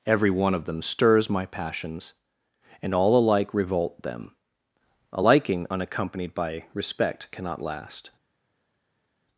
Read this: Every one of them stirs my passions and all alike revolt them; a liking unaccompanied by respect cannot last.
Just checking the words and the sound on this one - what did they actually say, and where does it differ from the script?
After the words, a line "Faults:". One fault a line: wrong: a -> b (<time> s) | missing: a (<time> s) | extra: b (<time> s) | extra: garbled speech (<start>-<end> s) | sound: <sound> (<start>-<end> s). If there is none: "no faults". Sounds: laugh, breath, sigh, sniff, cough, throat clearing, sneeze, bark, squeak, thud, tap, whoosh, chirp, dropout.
Every one of them stirs my passions and all alike revolt them; a liking unaccompanied by respect cannot last.
Faults:
no faults